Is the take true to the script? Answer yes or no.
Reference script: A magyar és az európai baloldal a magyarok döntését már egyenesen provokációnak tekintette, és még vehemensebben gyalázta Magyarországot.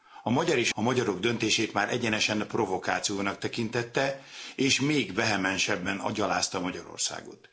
no